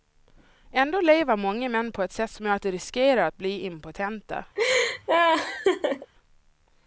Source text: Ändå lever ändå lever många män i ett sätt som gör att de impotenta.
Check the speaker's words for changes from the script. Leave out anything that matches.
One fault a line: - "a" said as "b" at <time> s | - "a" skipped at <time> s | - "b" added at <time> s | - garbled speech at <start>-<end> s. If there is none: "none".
- "ändå lever" skipped at 1.4 s
- "i" said as "på" at 1.9 s
- "riskerar att bli" added at 2.7 s